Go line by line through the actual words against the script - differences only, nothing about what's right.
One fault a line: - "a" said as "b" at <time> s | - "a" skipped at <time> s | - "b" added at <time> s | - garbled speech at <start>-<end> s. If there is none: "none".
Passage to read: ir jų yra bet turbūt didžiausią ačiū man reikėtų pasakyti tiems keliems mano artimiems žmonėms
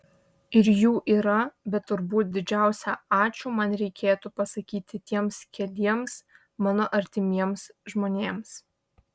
none